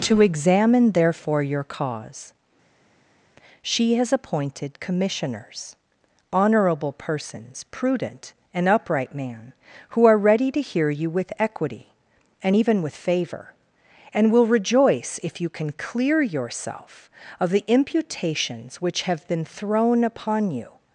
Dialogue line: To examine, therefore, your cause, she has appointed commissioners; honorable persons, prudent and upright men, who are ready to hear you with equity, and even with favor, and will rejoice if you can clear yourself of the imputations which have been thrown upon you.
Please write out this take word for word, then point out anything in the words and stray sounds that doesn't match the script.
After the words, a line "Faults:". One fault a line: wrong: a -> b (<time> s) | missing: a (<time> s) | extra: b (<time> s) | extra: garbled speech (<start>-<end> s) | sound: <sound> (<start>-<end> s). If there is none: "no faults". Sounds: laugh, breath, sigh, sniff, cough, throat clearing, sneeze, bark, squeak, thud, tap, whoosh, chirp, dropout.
To examine, therefore, your cause, she has appointed commissioners; honorable persons, prudent and upright man, who are ready to hear you with equity, and even with favor, and will rejoice if you can clear yourself of the imputations which have been thrown upon you.
Faults:
wrong: men -> man (9.1 s)